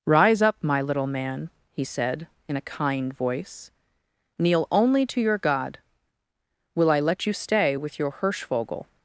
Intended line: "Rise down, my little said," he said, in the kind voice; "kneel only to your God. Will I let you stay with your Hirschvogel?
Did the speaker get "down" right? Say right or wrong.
wrong